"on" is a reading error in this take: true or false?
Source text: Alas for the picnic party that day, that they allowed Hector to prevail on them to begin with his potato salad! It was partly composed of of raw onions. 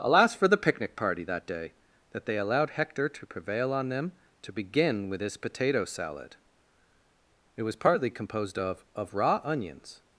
false